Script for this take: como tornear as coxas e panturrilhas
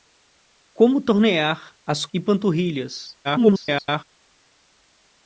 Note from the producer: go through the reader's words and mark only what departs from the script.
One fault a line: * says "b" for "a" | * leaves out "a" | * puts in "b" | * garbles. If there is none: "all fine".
* leaves out "coxas"
* garbles